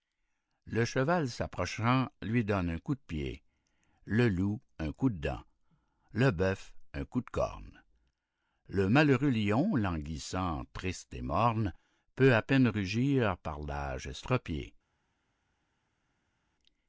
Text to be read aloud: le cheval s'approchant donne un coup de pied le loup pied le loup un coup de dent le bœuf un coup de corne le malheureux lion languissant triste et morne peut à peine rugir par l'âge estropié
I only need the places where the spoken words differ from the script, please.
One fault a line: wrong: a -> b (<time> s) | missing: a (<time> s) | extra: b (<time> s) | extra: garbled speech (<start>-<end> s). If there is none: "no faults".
extra: lui (2.2 s)
missing: pied le loup (4.6 s)